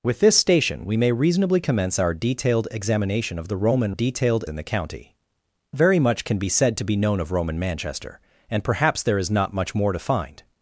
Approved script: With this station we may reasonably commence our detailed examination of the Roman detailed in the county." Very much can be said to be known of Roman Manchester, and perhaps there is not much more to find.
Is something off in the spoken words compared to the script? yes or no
no